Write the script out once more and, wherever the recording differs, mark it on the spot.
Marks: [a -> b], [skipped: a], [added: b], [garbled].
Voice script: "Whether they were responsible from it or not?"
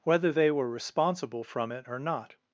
"Whether they were responsible from it or not?"